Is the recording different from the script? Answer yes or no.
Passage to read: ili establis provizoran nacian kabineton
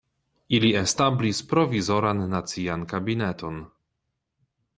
no